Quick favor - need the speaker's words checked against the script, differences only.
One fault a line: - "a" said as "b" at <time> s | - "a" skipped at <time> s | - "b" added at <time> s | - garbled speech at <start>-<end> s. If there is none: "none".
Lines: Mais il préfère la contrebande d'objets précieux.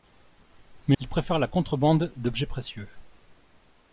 none